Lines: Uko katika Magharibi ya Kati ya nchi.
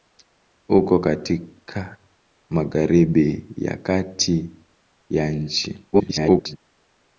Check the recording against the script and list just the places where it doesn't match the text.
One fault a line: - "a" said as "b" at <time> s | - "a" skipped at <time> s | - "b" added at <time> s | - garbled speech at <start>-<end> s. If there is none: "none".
- garbled speech at 5.9-6.6 s